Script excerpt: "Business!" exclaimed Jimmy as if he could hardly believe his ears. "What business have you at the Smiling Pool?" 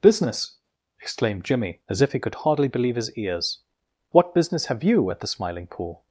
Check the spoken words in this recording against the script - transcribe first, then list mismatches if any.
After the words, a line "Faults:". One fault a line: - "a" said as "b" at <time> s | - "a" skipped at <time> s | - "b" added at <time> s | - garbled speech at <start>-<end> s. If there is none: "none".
"Business!" exclaimed Jimmy as if he could hardly believe his ears. "What business have you at the Smiling Pool?"
Faults:
none